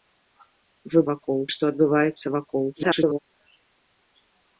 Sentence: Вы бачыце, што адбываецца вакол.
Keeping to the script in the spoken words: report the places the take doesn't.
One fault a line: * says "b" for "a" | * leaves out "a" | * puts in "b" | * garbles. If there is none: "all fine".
* says "вакол" for "бачыце"
* garbles